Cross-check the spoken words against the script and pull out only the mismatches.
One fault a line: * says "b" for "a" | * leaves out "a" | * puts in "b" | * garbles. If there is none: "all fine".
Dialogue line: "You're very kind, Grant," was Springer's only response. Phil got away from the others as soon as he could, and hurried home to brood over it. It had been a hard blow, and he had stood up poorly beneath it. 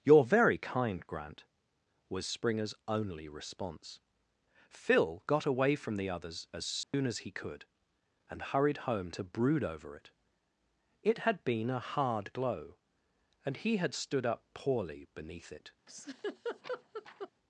* says "glow" for "blow"